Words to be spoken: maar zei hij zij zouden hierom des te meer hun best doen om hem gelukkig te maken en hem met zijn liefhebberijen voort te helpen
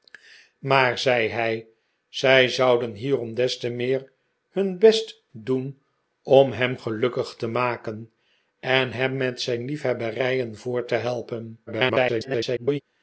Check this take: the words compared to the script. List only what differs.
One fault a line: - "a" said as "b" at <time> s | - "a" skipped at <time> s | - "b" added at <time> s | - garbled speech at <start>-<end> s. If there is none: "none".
- garbled speech at 11.7-12.8 s